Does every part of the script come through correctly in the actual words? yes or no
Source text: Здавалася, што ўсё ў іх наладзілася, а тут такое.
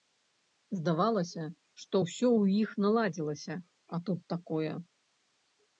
yes